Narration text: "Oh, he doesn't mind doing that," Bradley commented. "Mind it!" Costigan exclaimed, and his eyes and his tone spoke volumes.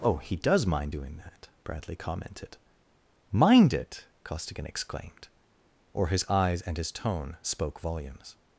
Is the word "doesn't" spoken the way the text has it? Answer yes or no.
no